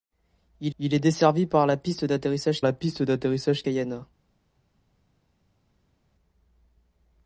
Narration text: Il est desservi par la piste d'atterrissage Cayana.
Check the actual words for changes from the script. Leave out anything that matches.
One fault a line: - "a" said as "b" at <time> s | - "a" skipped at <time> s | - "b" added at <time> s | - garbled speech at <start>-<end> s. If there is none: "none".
- "il" added at 0.8 s
- "la piste d'atterrissage" added at 2.6 s